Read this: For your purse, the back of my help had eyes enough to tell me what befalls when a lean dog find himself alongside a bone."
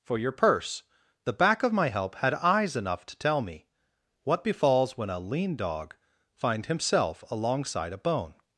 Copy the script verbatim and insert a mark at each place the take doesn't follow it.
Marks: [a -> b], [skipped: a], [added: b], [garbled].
For your purse, the back of my help had eyes enough to tell me what befalls when a lean dog find himself alongside a bone."